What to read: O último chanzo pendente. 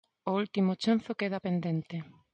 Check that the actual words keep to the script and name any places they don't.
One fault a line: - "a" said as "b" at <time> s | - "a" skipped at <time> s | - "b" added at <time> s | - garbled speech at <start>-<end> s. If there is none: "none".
- "queda" added at 1.2 s